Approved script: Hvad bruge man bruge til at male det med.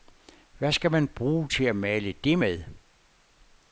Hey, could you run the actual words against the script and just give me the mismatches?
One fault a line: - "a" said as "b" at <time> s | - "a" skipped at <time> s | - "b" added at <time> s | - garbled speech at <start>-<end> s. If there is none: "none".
- "bruge" said as "skal" at 0.7 s